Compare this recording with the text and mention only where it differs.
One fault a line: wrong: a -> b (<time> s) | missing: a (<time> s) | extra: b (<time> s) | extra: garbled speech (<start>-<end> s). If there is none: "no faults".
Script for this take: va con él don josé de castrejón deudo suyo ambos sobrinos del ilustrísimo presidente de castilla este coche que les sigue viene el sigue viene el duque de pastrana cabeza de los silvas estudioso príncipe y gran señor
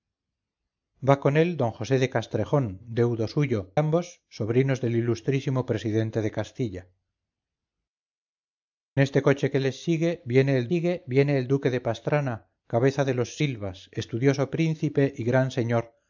no faults